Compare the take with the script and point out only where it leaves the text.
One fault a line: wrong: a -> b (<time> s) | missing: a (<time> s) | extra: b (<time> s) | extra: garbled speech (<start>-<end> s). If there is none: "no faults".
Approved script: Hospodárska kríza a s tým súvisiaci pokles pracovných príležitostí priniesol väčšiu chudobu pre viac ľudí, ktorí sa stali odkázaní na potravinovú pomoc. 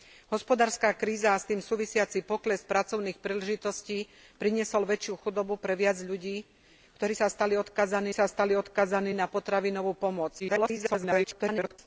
extra: sa stali odkázaní (8.1 s)
extra: garbled speech (10.4-11.8 s)